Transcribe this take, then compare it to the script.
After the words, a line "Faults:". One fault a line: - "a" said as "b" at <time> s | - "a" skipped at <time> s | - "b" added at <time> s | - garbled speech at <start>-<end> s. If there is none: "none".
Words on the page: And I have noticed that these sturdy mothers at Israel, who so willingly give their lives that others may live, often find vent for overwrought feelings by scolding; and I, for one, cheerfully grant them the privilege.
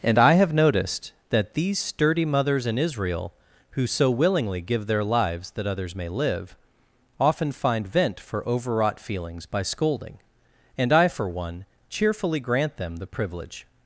And I have noticed that these sturdy mothers in Israel, who so willingly give their lives that others may live, often find vent for overwrought feelings by scolding; and I, for one, cheerfully grant them the privilege.
Faults:
- "at" said as "in" at 2.6 s